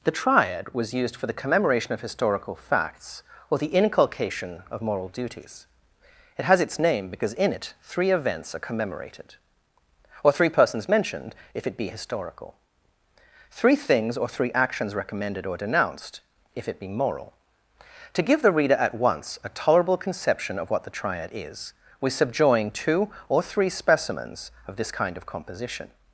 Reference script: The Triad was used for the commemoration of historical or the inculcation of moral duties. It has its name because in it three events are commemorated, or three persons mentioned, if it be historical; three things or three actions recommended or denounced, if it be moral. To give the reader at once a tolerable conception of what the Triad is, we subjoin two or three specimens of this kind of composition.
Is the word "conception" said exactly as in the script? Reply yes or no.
yes